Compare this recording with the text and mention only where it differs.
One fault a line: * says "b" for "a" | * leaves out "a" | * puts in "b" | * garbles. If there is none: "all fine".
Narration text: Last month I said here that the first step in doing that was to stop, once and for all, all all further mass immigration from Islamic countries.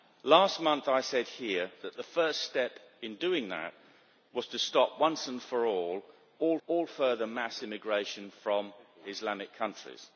all fine